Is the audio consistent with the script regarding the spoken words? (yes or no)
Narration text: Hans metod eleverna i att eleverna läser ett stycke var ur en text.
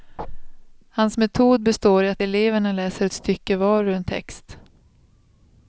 no